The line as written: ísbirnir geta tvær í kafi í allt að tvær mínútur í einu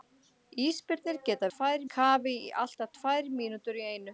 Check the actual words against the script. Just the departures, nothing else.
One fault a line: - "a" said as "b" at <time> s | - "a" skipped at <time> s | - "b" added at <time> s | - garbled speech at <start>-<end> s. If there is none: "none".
none